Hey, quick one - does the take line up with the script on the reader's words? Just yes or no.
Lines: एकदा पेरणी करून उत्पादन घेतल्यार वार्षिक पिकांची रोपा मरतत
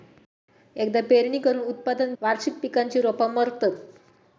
no